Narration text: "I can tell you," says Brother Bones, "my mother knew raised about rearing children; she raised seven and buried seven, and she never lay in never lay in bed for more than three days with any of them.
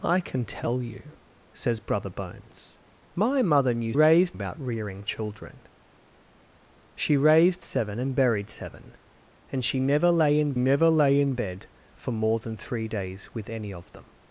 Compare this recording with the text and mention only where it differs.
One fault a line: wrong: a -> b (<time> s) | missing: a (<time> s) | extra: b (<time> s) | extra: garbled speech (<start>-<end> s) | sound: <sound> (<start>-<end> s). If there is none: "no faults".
no faults